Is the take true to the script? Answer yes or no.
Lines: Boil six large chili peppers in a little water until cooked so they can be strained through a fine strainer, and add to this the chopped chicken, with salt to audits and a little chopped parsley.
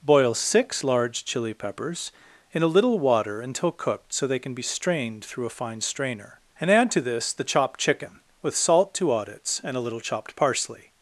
yes